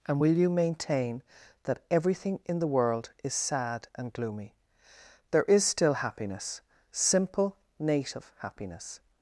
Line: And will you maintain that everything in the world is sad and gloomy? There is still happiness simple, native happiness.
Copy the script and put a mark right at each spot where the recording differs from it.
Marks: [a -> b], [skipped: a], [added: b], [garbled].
And will you maintain that everything in the world is sad and gloomy? There is still happiness simple, native happiness.